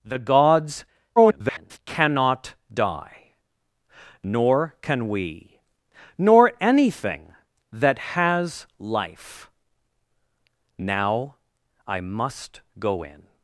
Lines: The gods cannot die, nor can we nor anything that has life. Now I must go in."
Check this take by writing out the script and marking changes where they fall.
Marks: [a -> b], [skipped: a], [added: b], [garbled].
The gods [garbled] cannot die, nor can we nor anything that has life. Now I must go in."